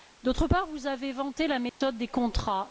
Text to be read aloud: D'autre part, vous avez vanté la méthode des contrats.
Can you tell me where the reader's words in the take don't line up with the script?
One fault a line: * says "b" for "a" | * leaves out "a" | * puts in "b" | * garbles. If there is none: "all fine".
all fine